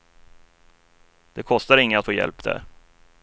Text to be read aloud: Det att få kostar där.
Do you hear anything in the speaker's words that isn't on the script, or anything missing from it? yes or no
yes